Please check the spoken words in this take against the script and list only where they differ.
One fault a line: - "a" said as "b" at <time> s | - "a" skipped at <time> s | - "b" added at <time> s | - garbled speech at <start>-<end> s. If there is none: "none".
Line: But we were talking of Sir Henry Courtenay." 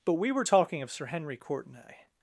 none